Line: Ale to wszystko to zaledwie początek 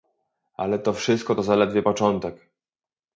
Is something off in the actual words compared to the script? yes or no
no